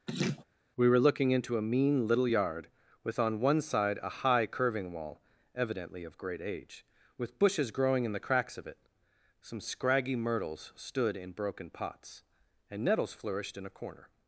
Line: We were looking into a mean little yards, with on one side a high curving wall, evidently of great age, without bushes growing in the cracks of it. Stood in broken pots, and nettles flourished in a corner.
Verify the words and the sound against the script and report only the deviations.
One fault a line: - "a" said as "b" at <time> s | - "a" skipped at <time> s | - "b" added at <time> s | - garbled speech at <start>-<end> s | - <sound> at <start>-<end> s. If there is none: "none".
- laugh at 0.1-0.4 s
- "yards" said as "yard" at 2.3 s
- "without" said as "with" at 7.2 s
- "Some scraggy myrtles" added at 9.4 s